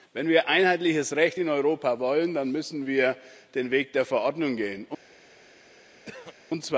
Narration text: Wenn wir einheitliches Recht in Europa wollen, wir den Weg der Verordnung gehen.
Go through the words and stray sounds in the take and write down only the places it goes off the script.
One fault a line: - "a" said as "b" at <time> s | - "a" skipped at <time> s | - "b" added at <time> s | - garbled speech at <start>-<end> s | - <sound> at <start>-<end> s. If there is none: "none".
- "dann müssen" added at 2.3 s
- throat clearing at 6.1-6.4 s